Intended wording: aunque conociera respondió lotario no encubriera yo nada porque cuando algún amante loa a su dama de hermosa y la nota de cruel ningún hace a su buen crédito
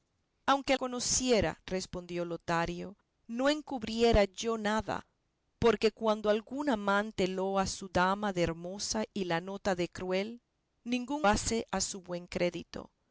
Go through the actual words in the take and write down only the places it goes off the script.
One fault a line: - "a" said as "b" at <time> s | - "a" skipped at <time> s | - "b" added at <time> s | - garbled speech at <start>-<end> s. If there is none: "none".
none